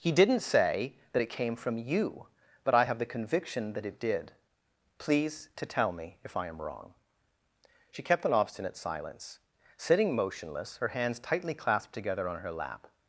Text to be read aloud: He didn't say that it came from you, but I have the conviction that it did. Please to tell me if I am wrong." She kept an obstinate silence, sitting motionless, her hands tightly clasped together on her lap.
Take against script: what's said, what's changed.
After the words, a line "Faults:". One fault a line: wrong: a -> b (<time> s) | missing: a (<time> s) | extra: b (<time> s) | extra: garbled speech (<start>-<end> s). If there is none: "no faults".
He didn't say that it came from you, but I have the conviction that it did. Please to tell me if I am wrong." She kept an obstinate silence, sitting motionless, her hands tightly clasped together on her lap.
Faults:
no faults